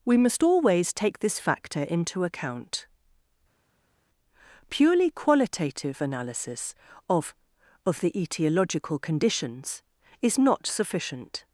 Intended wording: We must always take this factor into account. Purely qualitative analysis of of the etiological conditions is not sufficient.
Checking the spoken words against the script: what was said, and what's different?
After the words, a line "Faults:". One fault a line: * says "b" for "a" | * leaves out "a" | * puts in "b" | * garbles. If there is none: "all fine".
We must always take this factor into account. Purely qualitative analysis of of the etiological conditions is not sufficient.
Faults:
all fine